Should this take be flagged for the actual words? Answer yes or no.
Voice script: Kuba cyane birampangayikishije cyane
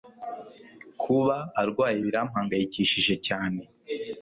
yes